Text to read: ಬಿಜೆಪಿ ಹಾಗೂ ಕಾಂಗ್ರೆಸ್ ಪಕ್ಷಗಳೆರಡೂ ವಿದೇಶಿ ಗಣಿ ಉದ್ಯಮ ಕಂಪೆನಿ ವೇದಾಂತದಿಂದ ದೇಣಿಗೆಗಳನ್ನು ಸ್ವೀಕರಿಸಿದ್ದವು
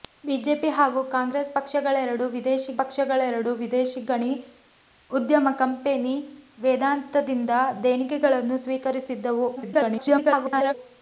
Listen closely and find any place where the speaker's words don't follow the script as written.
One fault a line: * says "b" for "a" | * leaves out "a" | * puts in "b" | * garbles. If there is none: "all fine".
* puts in "ಪಕ್ಷಗಳೆರಡೂ ವಿದೇಶಿ"
* garbles